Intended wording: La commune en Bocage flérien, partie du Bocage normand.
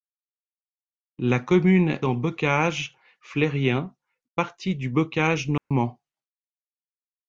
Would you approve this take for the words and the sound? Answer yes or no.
no